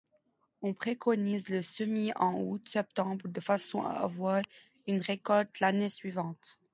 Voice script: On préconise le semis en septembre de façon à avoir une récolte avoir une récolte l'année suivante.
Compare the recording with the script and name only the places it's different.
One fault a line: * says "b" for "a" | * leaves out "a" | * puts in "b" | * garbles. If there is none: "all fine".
* puts in "août"
* leaves out "avoir une récolte"